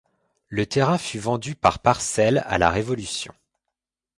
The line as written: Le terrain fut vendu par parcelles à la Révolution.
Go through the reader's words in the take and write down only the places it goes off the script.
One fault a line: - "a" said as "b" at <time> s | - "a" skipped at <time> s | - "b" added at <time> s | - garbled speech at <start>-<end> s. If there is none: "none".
none